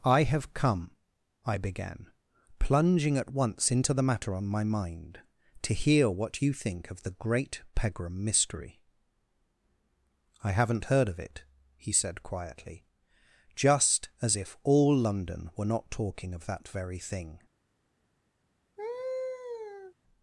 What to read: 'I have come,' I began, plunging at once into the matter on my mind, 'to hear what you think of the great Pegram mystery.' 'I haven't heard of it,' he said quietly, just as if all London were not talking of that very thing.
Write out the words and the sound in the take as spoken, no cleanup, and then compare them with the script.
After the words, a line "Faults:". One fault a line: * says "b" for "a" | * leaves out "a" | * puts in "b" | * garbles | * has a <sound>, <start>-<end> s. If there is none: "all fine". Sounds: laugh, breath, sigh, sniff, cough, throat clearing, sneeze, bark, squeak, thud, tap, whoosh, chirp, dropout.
'I have come,' I began, plunging at once into the matter on my mind, 'to hear what you think of the great Pegram mystery.' 'I haven't heard of it,' he said quietly, just as if all London were not talking of that very thing.
Faults:
* has a laugh, 18.8-19.9 s